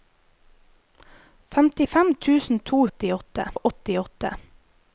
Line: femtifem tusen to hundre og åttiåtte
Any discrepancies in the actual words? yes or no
yes